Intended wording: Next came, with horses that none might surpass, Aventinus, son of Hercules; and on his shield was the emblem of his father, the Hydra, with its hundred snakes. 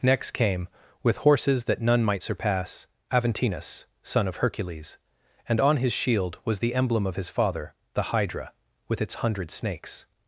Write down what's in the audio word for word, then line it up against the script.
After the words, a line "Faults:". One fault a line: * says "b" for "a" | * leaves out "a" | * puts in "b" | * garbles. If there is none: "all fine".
Next came, with horses that none might surpass, Aventinus, son of Hercules; and on his shield was the emblem of his father, the Hydra, with its hundred snakes.
Faults:
all fine